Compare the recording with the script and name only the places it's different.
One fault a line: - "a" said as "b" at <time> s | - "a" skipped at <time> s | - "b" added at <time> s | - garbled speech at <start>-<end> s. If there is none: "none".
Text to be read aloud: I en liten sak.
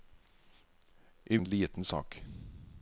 none